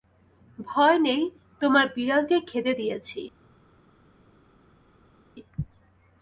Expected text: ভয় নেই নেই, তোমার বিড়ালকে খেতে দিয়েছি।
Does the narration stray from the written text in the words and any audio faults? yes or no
yes